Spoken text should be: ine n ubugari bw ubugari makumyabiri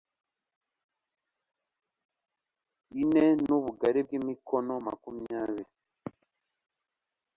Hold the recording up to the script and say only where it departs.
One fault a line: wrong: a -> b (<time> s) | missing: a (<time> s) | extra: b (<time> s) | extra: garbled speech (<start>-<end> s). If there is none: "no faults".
wrong: ubugari -> imikono (4.2 s)